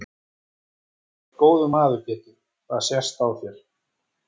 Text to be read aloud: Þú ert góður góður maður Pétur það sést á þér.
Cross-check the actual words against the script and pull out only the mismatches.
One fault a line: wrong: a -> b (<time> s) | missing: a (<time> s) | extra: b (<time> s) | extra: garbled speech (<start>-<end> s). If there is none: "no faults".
missing: góður (1.7 s)